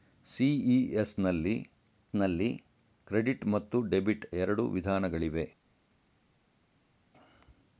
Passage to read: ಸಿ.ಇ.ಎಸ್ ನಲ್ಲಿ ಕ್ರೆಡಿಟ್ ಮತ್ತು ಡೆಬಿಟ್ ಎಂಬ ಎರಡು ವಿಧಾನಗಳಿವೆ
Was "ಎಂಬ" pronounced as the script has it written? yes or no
no